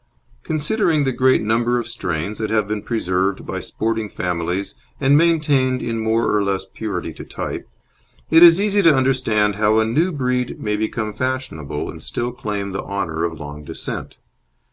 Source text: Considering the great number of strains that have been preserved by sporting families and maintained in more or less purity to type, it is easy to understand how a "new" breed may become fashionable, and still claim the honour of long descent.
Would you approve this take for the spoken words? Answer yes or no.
yes